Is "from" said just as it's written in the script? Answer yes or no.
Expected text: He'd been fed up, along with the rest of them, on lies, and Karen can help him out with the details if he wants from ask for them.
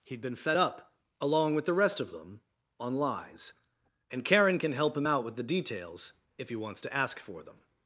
no